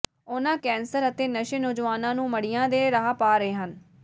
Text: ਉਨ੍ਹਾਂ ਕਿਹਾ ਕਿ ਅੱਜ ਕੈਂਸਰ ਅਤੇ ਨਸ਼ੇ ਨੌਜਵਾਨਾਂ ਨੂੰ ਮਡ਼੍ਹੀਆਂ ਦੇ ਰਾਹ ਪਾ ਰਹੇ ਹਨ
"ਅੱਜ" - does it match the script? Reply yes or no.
no